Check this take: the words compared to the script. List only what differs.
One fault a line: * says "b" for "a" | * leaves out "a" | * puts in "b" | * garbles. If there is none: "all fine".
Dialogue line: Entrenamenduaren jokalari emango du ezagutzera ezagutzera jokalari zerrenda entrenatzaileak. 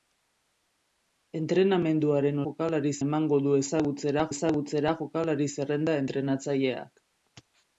all fine